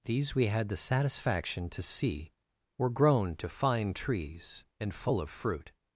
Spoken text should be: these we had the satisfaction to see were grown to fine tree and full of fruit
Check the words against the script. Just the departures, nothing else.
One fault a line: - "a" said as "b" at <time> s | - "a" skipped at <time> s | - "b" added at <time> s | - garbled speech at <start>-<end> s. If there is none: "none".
- "tree" said as "trees" at 3.9 s